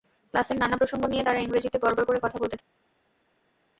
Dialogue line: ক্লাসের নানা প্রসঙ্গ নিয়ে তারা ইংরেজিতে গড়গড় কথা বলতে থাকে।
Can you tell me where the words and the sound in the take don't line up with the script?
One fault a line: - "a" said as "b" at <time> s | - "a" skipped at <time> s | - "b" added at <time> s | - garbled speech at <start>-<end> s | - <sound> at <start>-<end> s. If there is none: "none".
- "করে" added at 2.1 s